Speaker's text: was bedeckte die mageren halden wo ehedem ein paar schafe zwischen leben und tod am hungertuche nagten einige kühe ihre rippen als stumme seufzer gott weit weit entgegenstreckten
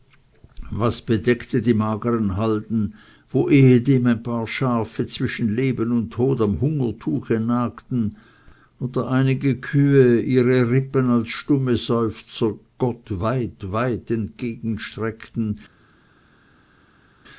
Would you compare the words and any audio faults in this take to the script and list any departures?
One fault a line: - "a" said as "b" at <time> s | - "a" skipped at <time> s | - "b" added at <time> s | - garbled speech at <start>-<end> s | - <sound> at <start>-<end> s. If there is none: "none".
- "oder" added at 8.8 s